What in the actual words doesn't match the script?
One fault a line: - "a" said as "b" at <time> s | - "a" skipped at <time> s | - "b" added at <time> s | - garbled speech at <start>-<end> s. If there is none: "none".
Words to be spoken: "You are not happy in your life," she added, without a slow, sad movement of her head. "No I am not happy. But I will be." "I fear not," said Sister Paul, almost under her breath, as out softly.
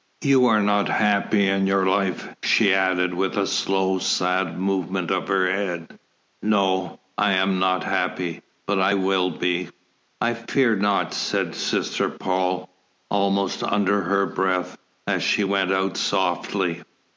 - "without" said as "with" at 3.1 s
- "she went" added at 15.2 s